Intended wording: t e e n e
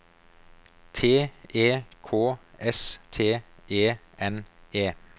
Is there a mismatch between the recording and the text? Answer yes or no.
yes